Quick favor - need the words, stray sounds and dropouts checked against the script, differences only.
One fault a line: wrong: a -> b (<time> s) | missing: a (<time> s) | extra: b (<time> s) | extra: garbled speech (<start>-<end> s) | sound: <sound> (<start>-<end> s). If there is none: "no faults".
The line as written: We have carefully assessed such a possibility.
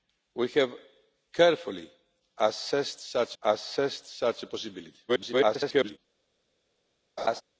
extra: assessed such (3.4 s)
extra: garbled speech (5.1-6.0 s)
sound: laugh (7.2-7.4 s)